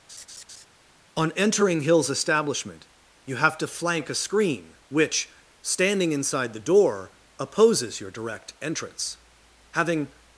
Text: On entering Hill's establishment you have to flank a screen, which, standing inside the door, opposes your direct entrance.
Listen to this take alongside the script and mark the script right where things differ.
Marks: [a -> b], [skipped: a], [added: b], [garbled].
On entering Hill's establishment you have to flank a screen, which, standing inside the door, opposes your direct entrance. [added: Having]